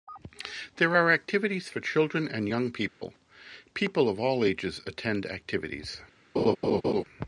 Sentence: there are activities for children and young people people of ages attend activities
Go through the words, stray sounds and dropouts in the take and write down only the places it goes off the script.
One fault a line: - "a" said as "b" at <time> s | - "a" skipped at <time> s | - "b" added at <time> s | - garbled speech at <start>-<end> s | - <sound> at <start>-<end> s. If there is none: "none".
- dropout at 2.9-3.0 s
- "all" added at 4.2 s
- laugh at 6.4-7.0 s